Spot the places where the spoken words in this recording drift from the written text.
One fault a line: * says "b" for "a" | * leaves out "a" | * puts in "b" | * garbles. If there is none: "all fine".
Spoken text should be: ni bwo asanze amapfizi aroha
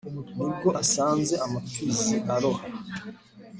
all fine